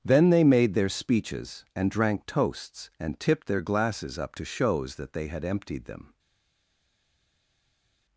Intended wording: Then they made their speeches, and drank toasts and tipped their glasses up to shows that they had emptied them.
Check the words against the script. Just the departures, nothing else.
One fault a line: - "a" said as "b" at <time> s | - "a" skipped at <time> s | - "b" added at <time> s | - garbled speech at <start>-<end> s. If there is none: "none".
none